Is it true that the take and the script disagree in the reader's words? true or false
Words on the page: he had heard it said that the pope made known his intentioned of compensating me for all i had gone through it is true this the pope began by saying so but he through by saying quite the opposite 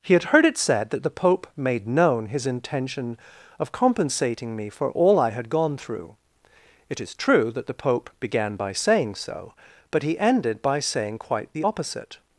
true